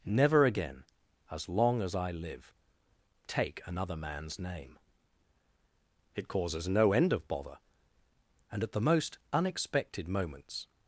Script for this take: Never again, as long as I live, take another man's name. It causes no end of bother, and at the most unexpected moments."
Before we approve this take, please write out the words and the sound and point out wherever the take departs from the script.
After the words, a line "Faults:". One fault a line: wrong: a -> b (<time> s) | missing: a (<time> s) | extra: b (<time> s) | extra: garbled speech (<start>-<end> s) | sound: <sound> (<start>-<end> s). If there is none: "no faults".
Never again, as long as I live, take another man's name. It causes no end of bother, and at the most unexpected moments."
Faults:
no faults